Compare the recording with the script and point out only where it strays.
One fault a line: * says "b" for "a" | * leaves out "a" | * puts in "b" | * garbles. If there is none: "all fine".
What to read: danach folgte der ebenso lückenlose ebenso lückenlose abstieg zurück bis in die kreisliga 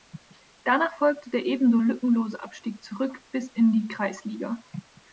* leaves out "ebenso lückenlose"